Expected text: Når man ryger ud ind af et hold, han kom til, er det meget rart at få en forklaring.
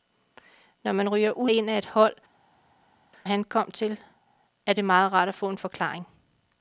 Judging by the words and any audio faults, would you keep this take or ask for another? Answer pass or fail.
pass